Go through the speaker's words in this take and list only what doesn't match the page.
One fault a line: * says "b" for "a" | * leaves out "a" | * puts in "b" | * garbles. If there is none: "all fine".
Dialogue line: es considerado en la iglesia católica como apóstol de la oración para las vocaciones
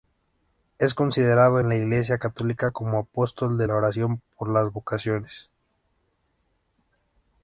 * says "por" for "para"